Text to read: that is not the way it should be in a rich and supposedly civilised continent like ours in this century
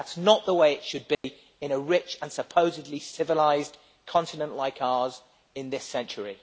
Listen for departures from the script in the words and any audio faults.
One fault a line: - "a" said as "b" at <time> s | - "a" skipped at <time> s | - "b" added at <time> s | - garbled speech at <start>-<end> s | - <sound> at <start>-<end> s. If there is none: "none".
- dropout at 1.1-1.2 s